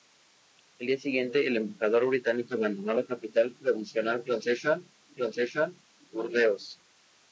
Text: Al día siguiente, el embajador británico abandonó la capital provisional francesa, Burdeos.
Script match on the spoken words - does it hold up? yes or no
no